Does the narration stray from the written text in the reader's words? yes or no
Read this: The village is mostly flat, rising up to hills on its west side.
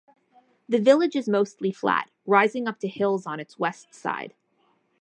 no